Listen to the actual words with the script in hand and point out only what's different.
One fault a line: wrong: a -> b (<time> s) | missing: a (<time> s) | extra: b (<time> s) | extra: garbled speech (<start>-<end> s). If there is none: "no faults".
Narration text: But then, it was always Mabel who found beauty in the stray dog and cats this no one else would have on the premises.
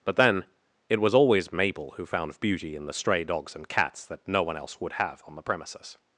wrong: dog -> dogs (3.2 s)
wrong: this -> that (4.0 s)